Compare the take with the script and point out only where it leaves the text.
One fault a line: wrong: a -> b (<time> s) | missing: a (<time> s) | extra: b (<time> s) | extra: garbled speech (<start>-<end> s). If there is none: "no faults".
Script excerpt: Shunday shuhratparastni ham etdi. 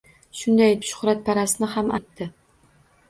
no faults